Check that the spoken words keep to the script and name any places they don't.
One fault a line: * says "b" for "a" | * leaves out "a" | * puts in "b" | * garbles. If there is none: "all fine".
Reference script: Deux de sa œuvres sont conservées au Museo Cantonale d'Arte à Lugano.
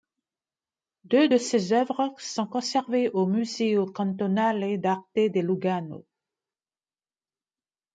* says "ses" for "sa"
* says "de" for "à"